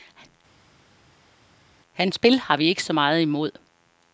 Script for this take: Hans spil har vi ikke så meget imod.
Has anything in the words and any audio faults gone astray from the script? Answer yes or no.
no